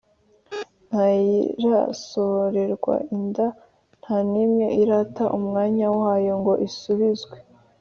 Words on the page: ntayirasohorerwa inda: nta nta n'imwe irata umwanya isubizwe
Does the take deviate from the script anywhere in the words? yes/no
yes